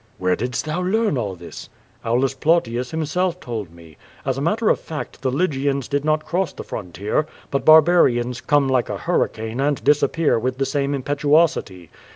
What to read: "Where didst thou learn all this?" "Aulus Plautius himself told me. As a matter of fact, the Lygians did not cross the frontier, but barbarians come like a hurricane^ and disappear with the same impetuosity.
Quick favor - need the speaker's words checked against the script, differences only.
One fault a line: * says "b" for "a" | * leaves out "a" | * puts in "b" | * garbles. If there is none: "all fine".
all fine